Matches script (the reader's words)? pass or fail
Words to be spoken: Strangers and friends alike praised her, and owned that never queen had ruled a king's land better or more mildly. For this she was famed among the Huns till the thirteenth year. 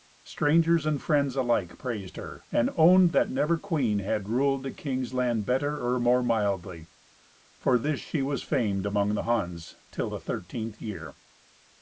pass